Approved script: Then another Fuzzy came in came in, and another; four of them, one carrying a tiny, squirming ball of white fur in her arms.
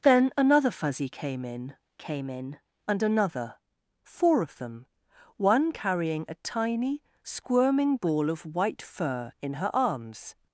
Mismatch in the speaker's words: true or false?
false